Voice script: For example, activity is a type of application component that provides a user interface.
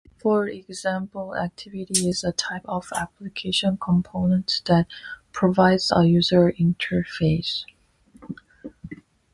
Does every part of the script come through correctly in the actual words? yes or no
yes